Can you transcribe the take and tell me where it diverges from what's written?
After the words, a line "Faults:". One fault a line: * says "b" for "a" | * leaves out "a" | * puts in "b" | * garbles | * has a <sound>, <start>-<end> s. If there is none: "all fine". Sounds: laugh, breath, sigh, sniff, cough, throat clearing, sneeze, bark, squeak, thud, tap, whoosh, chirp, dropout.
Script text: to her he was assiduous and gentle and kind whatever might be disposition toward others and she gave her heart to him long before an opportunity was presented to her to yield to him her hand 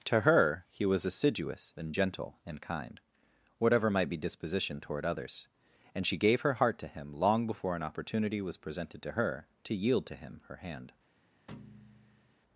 to her he was assiduous and gentle and kind whatever might be disposition toward others and she gave her heart to him long before an opportunity was presented to her to yield to him her hand
Faults:
* has a thud, 11.5-12.3 s